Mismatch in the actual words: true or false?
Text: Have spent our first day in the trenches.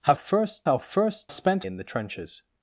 true